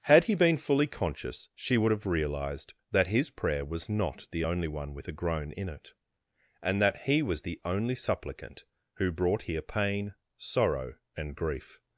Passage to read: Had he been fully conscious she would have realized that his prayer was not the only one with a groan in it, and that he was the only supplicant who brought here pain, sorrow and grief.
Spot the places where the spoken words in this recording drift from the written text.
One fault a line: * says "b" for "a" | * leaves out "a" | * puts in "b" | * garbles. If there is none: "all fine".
all fine